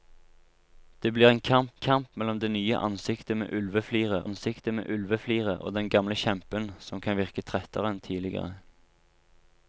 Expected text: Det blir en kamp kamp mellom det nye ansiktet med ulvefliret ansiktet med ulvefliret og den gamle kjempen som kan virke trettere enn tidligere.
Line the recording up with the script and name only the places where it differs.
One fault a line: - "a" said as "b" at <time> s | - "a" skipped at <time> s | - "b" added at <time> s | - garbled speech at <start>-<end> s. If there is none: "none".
none